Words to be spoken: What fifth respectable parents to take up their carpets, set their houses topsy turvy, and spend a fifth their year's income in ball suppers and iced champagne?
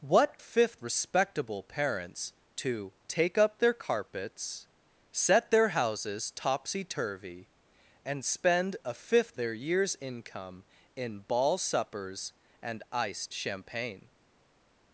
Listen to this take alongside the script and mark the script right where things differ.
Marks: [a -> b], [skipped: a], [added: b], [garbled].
What fifth respectable parents to take up their carpets, set their houses topsy turvy, and spend a fifth their year's income in ball suppers and iced champagne?